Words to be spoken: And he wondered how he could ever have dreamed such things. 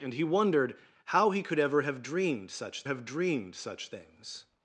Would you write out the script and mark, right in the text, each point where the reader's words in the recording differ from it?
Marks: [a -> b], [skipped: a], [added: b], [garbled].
And he wondered how he could ever have dreamed such [added: have dreamed such] things.